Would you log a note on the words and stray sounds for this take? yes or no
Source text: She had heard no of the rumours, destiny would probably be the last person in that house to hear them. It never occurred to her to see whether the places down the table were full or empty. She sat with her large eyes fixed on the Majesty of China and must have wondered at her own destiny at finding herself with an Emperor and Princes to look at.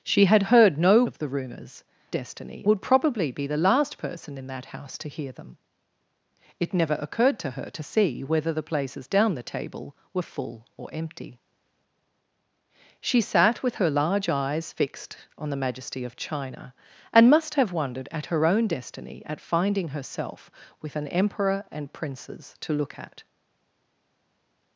no